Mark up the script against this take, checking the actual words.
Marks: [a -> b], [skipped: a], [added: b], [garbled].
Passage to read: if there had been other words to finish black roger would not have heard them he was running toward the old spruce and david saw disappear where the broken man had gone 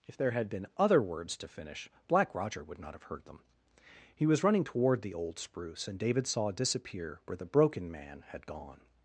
if there had been other words to finish black roger would not have heard them he was running toward the old spruce and david saw disappear where the broken man had gone